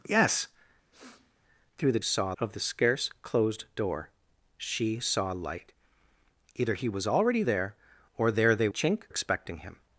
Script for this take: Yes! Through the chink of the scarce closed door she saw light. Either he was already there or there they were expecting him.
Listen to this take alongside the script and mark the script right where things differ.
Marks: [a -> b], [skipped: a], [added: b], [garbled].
Yes! Through the [chink -> saw] of the scarce closed door she saw light. Either he was already there or there they [were -> chink] expecting him.